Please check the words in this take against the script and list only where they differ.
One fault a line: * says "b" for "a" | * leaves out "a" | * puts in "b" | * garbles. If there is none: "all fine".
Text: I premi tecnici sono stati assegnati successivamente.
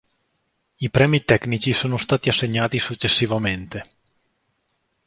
all fine